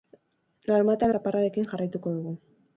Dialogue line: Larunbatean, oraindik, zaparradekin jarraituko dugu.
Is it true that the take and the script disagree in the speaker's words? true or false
true